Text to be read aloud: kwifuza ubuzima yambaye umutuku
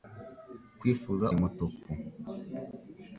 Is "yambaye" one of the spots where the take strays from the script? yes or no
yes